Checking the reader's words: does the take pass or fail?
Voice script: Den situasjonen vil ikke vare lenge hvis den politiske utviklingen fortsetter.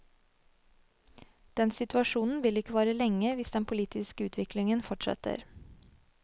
pass